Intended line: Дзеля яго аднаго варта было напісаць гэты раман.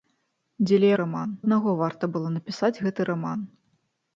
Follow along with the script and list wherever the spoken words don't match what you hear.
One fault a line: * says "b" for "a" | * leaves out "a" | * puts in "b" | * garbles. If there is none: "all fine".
* says "раман" for "яго"